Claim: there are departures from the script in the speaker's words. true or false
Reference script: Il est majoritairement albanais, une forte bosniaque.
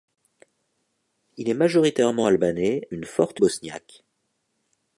false